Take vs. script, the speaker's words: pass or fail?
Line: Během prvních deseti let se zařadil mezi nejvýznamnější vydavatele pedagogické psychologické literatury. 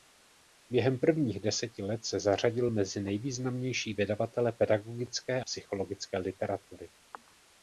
pass